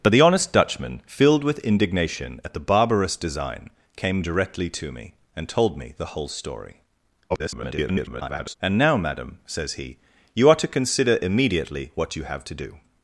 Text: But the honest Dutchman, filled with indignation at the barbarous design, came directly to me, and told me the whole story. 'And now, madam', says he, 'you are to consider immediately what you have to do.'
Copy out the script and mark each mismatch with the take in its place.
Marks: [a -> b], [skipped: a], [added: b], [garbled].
But the honest Dutchman, filled with indignation at the barbarous design, came directly to me, and told me the whole story. [garbled] 'And now, madam', says he, 'you are to consider immediately what you have to do.'